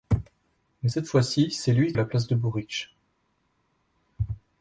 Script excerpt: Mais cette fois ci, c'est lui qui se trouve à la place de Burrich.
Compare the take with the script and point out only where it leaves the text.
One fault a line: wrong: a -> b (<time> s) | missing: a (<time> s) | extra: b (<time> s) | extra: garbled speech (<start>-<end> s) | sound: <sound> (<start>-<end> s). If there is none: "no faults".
missing: qui se trouve (1.9 s)